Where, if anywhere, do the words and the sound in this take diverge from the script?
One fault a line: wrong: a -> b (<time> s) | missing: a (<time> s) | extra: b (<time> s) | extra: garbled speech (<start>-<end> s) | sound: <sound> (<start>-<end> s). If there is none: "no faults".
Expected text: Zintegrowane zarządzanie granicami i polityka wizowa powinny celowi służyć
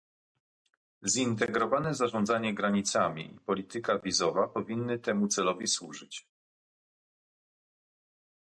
extra: temu (5.0 s)